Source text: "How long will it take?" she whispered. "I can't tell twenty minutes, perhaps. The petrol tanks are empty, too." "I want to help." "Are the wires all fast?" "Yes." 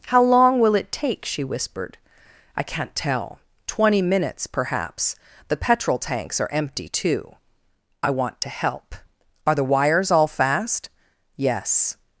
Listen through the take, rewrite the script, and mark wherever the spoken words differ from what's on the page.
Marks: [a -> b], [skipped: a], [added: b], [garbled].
"How long will it take?" she whispered. "I can't tell twenty minutes, perhaps. The petrol tanks are empty, too." "I want to help." "Are the wires all fast?" "Yes."